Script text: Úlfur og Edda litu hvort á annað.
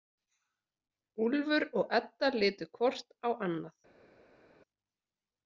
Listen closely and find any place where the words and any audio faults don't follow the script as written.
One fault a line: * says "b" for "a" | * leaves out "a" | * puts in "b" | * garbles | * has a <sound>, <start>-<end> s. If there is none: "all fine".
all fine